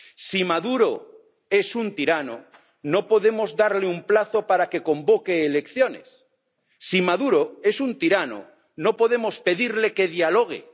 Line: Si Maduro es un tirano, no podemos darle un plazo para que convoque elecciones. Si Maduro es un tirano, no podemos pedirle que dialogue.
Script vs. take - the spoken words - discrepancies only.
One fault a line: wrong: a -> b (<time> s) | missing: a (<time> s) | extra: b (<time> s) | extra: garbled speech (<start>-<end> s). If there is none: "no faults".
no faults